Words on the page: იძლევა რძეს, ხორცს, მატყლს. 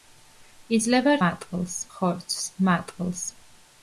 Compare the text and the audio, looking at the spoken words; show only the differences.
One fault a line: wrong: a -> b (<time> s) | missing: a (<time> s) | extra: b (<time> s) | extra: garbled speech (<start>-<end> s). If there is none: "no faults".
wrong: რძეს -> მატყლს (1.2 s)